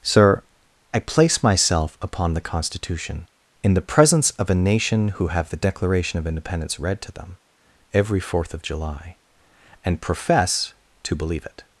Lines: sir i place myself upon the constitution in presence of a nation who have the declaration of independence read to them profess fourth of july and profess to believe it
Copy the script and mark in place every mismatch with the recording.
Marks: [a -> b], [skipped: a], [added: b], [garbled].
sir i place myself upon the constitution in [added: the] presence of a nation who have the declaration of independence read to them [profess -> every] fourth of july and profess to believe it